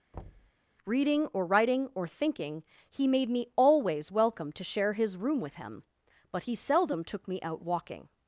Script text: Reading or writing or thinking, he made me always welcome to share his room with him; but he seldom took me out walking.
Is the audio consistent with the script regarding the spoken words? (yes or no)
yes